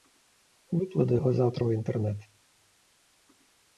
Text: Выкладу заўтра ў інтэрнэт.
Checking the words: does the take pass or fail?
fail